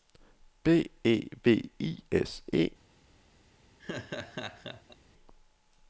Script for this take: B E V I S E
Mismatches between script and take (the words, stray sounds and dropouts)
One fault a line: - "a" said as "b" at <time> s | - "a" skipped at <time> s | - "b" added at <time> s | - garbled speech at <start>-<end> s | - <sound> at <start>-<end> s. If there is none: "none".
- laugh at 3.8-5.0 s